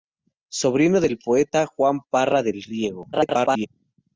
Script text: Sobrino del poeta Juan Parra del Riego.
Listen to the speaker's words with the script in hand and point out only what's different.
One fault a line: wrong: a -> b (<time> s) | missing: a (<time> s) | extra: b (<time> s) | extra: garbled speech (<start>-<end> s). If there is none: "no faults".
extra: garbled speech (3.1-3.7 s)